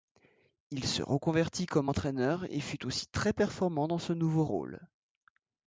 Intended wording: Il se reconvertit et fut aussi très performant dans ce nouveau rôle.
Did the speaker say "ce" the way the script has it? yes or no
yes